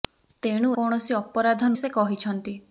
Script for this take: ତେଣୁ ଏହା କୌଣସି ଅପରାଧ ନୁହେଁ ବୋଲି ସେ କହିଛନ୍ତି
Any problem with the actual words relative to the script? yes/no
yes